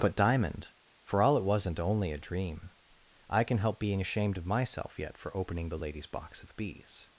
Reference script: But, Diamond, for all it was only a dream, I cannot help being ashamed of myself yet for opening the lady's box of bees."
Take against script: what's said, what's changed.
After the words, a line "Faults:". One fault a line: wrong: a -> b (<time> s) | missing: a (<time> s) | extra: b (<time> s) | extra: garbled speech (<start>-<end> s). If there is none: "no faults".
But, Diamond, for all it wasn't only a dream, I can help being ashamed of myself yet for opening the lady's box of bees."
Faults:
wrong: was -> wasn't (1.4 s)
wrong: cannot -> can (3.4 s)